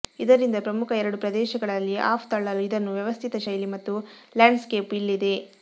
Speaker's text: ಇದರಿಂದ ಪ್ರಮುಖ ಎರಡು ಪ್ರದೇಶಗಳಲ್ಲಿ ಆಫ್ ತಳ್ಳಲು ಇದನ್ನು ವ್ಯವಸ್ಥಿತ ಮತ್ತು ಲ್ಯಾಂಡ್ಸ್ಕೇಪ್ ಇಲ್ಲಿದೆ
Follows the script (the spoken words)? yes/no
no